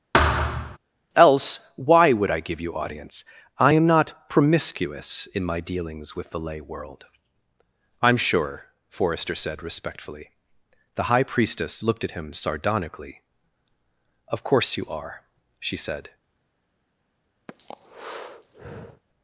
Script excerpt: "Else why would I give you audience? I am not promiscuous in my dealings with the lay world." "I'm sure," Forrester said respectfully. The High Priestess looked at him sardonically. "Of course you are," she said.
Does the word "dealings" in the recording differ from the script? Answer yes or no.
no